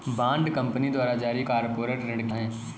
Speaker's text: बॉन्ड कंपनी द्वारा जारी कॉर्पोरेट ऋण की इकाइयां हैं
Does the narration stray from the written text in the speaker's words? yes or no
yes